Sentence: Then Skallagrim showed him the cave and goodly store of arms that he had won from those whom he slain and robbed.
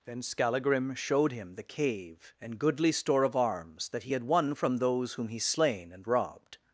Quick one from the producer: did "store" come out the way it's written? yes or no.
yes